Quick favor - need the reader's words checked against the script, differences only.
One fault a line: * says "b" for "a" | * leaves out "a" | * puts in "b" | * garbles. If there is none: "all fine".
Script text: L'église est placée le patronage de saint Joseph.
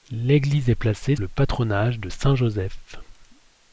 all fine